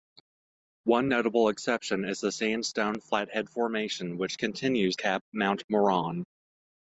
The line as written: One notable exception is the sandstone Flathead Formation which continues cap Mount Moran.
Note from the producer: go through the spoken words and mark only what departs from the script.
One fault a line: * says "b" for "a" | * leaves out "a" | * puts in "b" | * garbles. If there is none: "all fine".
all fine